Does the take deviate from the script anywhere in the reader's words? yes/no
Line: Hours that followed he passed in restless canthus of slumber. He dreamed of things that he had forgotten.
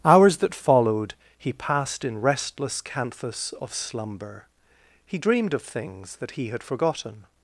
no